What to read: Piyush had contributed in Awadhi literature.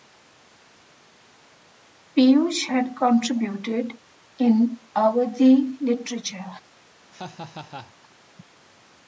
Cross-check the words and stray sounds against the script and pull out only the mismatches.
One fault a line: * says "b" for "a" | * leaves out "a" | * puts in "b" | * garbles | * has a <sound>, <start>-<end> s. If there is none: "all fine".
* has a laugh, 7.1-7.9 s